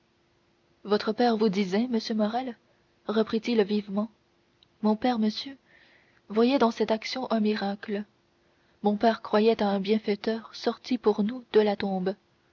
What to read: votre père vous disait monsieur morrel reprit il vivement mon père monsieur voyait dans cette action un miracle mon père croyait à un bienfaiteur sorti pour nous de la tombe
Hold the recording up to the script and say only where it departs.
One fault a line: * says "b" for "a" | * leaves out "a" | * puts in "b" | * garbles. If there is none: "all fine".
all fine